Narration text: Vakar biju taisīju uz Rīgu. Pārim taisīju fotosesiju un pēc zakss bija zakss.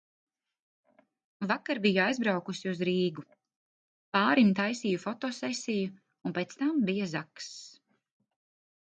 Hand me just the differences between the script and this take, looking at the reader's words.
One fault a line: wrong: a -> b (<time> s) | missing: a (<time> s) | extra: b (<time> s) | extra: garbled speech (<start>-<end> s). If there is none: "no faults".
wrong: taisīju -> aizbraukusi (2.0 s)
wrong: zakss -> tam (6.6 s)